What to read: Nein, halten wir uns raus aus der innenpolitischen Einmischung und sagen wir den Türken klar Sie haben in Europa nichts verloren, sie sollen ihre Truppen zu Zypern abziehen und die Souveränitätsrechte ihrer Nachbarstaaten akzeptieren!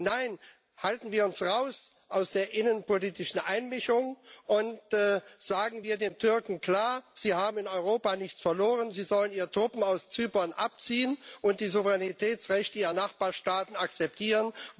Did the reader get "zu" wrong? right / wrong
wrong